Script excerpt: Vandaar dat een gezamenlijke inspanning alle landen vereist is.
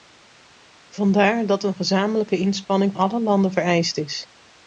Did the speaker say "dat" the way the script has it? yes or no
yes